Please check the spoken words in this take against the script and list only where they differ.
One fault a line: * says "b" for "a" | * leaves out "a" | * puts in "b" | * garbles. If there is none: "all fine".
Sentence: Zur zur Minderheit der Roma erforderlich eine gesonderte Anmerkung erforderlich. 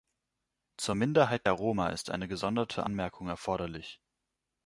* leaves out "zur"
* says "ist" for "erforderlich"